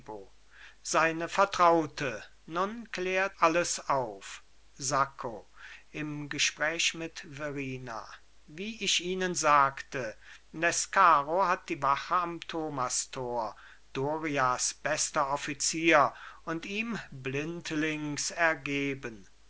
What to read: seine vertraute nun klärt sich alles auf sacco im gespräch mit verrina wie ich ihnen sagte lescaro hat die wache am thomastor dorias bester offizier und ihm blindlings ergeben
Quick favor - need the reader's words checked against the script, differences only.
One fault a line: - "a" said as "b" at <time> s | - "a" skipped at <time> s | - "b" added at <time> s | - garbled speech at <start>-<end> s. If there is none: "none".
- "sich" skipped at 3.4 s